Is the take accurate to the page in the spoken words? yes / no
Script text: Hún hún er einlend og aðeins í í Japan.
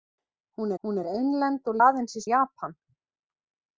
yes